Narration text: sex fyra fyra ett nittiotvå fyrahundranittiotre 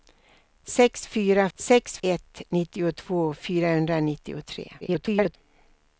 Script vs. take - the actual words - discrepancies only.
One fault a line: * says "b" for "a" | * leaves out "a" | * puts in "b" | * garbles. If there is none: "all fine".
* says "sex" for "fyra"
* garbles